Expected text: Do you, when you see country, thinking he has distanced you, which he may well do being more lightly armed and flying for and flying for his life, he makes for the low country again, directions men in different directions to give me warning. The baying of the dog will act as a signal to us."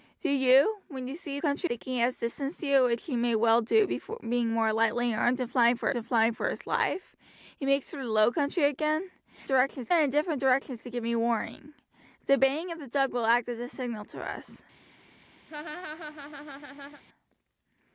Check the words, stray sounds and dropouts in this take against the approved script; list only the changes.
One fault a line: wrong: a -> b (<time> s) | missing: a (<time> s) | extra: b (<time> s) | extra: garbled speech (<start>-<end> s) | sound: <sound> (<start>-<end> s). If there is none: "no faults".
sound: laugh (15.5-17.0 s)